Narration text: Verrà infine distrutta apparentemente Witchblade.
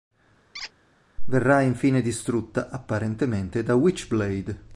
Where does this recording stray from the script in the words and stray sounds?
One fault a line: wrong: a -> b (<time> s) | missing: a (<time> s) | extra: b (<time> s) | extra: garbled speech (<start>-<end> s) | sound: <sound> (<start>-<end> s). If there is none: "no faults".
sound: squeak (0.5-0.7 s)
extra: da (3.6 s)